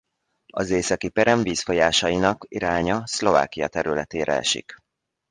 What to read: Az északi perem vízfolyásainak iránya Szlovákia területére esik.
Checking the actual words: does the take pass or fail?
pass